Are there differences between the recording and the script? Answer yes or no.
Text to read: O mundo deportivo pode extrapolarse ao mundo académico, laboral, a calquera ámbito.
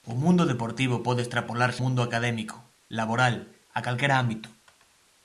yes